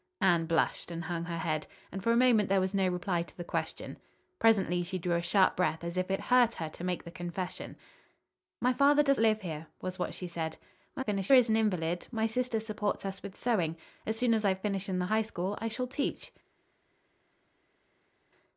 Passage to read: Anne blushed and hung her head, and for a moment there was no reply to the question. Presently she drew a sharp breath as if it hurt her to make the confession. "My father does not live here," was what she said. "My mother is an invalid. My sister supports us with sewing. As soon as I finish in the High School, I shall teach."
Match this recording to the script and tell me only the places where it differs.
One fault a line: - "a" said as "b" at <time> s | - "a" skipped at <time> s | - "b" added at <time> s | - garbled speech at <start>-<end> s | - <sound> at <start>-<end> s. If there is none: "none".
- "not" skipped at 9.2 s
- "mother" said as "finish" at 11.0 s